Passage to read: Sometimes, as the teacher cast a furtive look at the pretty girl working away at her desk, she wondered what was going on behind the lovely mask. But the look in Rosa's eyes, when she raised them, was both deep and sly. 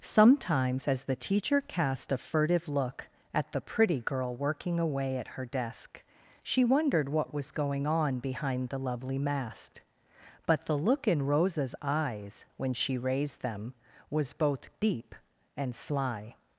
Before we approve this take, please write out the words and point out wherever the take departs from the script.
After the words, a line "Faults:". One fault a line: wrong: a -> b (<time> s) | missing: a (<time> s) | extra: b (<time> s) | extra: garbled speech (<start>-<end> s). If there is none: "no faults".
Sometimes, as the teacher cast a furtive look at the pretty girl working away at her desk, she wondered what was going on behind the lovely mask. But the look in Rosa's eyes, when she raised them, was both deep and sly.
Faults:
no faults